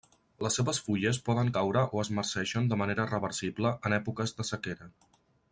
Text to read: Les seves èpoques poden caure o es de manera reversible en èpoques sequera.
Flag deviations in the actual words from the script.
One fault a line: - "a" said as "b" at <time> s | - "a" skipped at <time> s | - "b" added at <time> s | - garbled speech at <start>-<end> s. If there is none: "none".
- "èpoques" said as "fulles" at 0.8 s
- "marceixen" added at 2.2 s
- "de" added at 4.4 s